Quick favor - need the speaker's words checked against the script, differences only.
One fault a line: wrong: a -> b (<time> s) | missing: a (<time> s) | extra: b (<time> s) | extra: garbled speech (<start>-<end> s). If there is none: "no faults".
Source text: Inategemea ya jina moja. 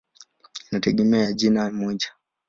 no faults